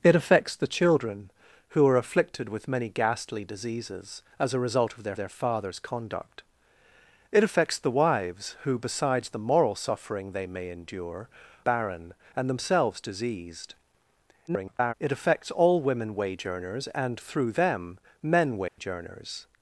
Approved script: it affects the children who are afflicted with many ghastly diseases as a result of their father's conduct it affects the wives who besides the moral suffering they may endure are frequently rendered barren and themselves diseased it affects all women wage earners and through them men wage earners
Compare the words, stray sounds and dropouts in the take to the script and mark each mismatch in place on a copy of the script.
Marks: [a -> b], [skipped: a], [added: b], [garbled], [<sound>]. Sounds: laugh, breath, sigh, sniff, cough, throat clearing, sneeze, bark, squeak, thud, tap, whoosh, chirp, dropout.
it affects the children who are afflicted with many ghastly diseases as a result of their [added: their] father's conduct it affects the wives who besides the moral suffering they may endure [skipped: are frequently rendered] barren and themselves diseased [garbled] it affects all women wage earners and through them men wage [dropout] earners